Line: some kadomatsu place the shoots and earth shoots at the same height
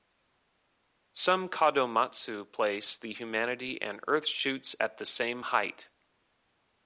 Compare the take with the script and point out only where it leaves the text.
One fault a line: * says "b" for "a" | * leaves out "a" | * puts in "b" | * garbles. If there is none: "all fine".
* says "humanity" for "shoots"